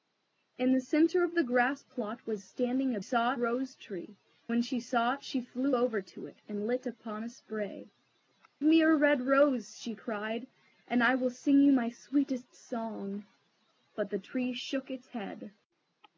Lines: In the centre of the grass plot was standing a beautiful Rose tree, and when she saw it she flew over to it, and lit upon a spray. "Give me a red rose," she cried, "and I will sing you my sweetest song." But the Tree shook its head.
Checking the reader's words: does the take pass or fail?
fail